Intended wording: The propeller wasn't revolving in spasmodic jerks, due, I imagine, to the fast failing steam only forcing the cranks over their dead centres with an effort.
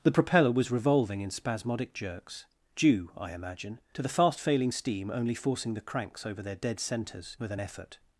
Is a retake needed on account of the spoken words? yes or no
yes